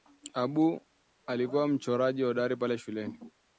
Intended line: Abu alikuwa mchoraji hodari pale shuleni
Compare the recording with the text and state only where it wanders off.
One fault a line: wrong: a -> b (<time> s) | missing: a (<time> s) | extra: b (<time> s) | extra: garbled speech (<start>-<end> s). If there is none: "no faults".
no faults